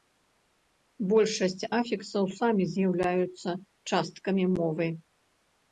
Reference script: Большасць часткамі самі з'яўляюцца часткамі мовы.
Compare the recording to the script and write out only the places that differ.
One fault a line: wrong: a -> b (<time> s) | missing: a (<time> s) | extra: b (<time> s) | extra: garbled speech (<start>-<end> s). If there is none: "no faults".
wrong: часткамі -> афіксаў (1.8 s)